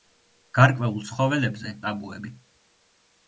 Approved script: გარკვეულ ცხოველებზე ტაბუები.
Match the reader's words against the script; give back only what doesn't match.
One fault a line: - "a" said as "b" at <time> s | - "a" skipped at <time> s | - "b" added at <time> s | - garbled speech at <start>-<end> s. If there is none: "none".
none